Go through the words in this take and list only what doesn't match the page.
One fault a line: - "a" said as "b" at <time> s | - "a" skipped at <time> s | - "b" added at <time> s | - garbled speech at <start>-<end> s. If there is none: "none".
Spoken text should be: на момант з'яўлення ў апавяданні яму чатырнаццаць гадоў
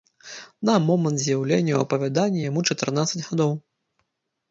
none